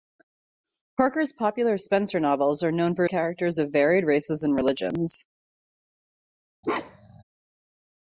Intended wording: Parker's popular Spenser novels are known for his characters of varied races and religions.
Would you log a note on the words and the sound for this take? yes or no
yes